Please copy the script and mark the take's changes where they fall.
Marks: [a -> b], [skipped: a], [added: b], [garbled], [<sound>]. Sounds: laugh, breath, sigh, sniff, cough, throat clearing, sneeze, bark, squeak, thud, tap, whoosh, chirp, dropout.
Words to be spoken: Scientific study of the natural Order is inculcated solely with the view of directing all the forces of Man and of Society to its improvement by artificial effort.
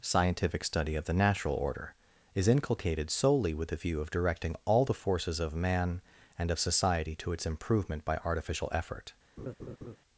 Scientific study of the natural Order is inculcated solely with the view of directing all the forces of Man and of Society to its improvement by artificial effort. [laugh]